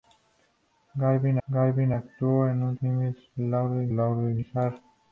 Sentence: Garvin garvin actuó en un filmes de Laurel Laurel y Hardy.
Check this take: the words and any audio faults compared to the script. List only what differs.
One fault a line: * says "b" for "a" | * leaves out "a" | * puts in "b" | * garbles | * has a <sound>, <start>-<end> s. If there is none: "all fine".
all fine